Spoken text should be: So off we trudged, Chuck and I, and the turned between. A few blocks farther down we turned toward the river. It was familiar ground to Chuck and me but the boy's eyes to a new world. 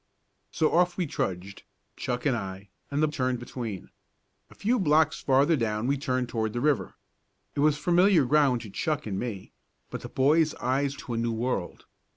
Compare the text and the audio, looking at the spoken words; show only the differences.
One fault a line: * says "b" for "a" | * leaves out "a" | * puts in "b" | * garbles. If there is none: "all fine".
all fine